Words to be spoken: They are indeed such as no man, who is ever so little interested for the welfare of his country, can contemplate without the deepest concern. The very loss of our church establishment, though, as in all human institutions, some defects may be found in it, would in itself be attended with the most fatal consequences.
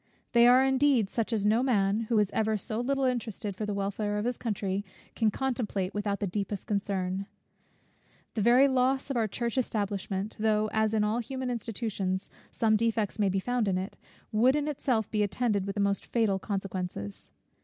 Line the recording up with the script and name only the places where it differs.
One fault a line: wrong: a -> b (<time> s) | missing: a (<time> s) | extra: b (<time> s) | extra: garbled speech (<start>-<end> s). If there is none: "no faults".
no faults